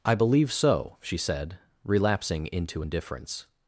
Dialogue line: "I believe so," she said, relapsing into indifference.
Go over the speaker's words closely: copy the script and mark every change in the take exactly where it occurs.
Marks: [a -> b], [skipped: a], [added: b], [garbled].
"I believe so," she said, relapsing into indifference.